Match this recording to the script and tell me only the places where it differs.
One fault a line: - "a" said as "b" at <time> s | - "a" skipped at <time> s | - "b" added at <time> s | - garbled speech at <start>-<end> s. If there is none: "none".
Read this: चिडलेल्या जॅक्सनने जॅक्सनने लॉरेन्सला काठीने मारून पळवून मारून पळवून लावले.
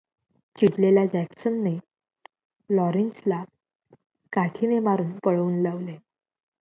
- "जॅक्सनने" skipped at 1.8 s
- "मारून पळवून" skipped at 5.6 s